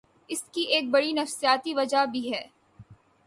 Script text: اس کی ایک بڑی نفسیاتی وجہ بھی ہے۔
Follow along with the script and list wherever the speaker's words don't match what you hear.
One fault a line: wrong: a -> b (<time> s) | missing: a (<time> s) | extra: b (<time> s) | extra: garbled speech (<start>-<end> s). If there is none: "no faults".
no faults